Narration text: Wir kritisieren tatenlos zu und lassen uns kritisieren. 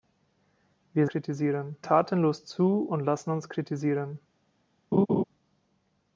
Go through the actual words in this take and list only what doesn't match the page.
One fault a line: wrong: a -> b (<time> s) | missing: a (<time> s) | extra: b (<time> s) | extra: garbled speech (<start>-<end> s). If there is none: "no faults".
no faults